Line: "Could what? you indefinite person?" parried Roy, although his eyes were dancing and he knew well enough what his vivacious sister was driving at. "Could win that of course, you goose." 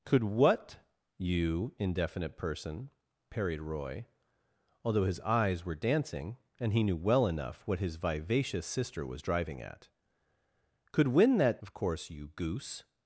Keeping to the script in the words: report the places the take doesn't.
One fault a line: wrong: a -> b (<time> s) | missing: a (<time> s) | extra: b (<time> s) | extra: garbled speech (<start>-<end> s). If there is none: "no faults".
no faults